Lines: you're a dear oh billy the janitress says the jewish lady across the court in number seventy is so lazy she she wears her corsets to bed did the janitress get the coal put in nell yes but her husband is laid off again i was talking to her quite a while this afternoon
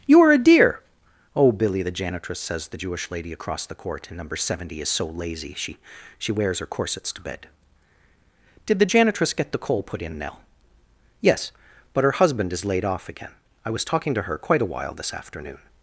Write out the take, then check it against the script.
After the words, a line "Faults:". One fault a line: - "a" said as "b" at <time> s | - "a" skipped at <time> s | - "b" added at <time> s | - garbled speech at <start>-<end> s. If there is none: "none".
you're a dear oh billy the janitress says the jewish lady across the court in number seventy is so lazy she she wears her corsets to bed did the janitress get the coal put in nell yes but her husband is laid off again i was talking to her quite a while this afternoon
Faults:
none